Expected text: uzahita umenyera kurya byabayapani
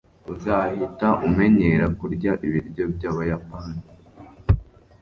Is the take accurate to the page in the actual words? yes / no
no